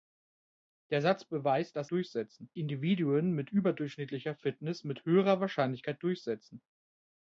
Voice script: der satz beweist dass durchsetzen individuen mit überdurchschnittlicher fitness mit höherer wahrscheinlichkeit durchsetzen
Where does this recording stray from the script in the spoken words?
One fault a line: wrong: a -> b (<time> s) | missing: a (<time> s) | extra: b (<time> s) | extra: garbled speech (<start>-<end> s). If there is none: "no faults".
no faults